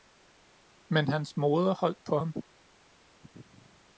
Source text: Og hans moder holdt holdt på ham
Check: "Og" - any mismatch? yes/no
yes